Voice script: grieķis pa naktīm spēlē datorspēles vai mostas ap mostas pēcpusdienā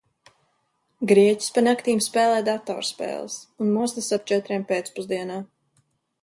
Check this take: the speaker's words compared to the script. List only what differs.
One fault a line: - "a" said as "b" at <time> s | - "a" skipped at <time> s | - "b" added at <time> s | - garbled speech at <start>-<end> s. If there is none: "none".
- "vai" said as "un" at 3.6 s
- "mostas" said as "četriem" at 4.3 s